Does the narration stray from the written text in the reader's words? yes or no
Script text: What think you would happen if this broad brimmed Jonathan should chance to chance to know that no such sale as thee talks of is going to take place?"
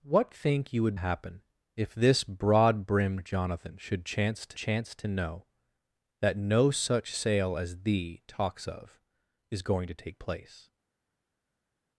no